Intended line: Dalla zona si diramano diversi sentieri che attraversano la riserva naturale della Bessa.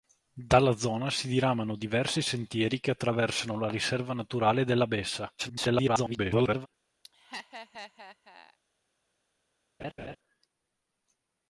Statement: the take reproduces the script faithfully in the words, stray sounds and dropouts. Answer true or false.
false